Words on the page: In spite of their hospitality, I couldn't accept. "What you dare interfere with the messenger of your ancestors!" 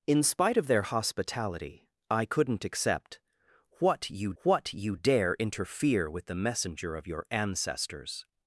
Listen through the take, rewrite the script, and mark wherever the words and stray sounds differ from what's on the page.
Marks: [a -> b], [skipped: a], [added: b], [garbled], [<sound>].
In spite of their hospitality, I couldn't accept. "What you [added: what you] dare interfere with the messenger of your ancestors!"